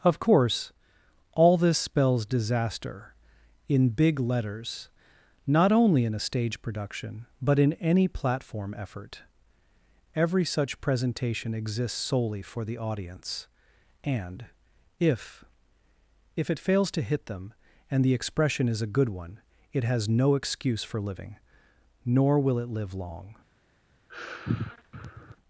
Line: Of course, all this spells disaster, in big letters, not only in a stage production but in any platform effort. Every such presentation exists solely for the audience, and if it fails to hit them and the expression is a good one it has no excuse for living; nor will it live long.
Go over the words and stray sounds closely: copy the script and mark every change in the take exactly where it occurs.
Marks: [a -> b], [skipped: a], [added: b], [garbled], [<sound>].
Of course, all this spells disaster, in big letters, not only in a stage production but in any platform effort. Every such presentation exists solely for the audience, and if [added: if] it fails to hit them and the expression is a good one it has no excuse for living; nor will it live long. [sigh]